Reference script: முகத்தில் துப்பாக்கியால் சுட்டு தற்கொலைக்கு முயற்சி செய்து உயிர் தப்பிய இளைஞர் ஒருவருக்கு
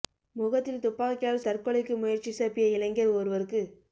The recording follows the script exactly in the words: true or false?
false